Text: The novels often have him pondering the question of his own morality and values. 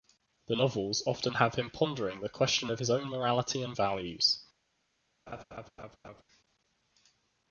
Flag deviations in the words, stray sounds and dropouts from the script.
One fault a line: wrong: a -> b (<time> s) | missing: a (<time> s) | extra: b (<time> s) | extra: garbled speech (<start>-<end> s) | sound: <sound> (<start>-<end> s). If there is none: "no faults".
sound: laugh (5.3-6.2 s)